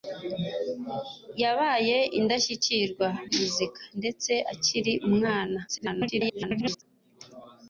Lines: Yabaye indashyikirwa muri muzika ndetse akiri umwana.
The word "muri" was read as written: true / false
false